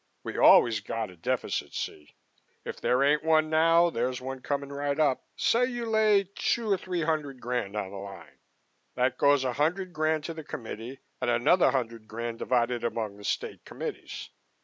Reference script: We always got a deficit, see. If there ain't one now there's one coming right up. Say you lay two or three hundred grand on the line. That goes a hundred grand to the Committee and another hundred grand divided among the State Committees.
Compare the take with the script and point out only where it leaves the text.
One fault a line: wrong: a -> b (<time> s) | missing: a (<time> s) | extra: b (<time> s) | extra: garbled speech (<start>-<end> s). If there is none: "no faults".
no faults